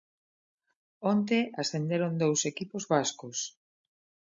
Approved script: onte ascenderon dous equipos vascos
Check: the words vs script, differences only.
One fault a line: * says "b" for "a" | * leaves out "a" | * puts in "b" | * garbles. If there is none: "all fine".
all fine